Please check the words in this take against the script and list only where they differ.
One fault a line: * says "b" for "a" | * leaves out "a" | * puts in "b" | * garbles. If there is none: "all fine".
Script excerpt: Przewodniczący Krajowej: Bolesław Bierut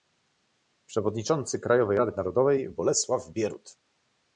* puts in "Rady Narodowej"